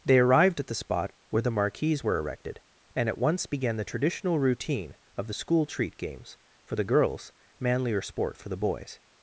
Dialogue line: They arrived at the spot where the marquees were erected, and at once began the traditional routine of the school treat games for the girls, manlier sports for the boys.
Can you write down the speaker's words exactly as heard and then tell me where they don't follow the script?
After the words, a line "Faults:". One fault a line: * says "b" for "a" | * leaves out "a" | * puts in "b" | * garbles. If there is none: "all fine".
They arrived at the spot where the marquees were erected, and at once began the traditional routine of the school treat games for the girls, manlier sport for the boys.
Faults:
* says "sport" for "sports"